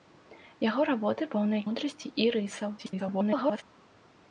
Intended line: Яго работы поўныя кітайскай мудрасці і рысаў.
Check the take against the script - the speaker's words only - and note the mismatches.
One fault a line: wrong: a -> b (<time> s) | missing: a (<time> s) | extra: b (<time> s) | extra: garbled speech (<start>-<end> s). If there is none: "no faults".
missing: кітайскай (1.7 s)
extra: garbled speech (2.8-3.6 s)